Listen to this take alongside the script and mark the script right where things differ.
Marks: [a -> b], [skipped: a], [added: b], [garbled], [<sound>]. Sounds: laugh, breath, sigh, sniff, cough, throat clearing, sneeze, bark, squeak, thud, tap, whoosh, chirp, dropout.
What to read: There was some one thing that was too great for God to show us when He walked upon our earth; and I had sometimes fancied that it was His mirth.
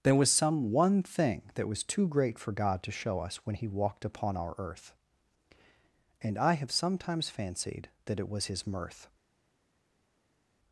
There was some one thing that was too great for God to show us when He walked upon our earth; and I [had -> have] sometimes fancied that it was His mirth.